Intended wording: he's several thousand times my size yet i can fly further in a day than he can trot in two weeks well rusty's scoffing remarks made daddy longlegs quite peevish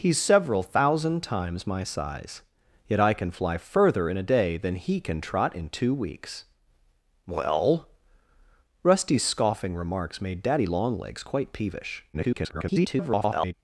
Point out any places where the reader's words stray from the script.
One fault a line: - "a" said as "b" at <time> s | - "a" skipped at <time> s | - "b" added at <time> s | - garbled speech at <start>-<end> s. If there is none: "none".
- garbled speech at 12.1-13.5 s